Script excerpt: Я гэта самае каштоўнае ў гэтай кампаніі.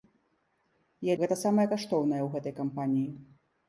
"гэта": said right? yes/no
yes